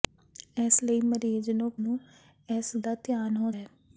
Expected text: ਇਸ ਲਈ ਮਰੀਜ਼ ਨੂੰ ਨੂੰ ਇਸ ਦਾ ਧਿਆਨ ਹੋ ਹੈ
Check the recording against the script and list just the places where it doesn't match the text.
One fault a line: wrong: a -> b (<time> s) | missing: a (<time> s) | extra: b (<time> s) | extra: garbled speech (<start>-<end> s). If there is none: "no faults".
no faults